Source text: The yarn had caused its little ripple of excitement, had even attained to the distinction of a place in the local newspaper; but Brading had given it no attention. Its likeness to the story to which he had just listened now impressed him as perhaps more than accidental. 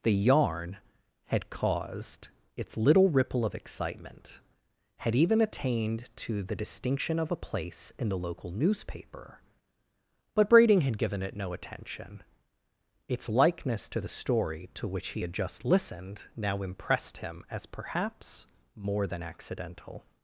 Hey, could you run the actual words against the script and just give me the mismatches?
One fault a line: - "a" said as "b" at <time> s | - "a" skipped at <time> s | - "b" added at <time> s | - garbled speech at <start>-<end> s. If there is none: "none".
none